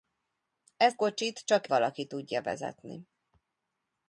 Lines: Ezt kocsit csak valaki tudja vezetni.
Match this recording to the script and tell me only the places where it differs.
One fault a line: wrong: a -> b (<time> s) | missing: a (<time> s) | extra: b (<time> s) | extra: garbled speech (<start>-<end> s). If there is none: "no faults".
no faults